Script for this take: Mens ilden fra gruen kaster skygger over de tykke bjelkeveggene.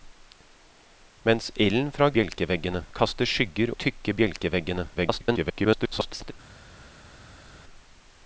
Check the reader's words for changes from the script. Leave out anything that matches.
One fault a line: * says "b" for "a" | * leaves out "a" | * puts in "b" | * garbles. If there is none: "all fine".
* says "bjelkeveggene" for "gruen"
* leaves out "over"
* garbles